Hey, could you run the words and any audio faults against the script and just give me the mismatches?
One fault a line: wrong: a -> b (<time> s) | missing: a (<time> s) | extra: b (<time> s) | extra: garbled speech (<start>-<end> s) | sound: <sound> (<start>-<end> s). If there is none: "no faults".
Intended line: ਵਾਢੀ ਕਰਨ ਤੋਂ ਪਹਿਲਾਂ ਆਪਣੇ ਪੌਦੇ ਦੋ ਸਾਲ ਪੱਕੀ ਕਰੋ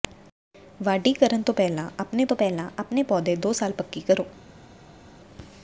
extra: ਤੋਂ ਪਹਿਲਾਂ ਆਪਣੇ (2.2 s)